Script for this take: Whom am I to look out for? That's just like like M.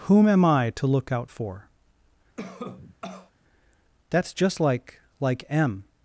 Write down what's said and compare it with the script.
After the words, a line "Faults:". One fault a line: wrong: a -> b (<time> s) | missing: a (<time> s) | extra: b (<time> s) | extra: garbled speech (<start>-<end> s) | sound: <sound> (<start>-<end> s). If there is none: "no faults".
Whom am I to look out for? That's just like like M.
Faults:
sound: cough (2.4-3.3 s)